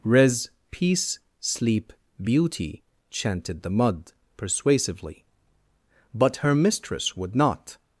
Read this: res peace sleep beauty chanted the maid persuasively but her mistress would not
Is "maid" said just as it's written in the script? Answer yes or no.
no